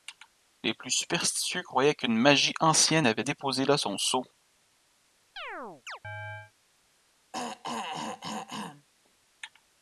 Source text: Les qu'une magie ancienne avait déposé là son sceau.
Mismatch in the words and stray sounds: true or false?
true